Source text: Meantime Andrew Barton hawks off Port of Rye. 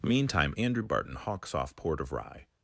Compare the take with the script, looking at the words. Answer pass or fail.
pass